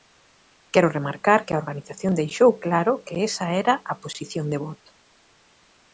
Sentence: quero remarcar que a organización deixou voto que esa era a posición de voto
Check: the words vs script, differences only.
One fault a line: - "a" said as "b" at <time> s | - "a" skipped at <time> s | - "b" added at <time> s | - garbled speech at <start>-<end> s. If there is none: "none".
- "voto" said as "claro" at 2.6 s